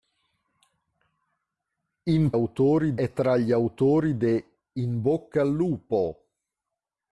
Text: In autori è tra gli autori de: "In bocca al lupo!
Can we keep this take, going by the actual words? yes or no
yes